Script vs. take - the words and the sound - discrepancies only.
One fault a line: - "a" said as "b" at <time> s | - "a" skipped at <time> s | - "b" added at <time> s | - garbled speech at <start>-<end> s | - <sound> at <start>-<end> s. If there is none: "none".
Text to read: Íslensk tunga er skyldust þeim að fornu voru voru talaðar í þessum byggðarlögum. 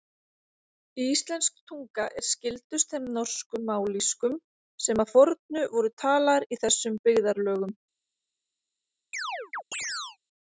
- "norsku mállýskum sem" added at 3.2 s
- "voru" skipped at 5.9 s
- chirp at 9.1-10.2 s